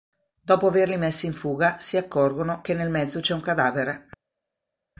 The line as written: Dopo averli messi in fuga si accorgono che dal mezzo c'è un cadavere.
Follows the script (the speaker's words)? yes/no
no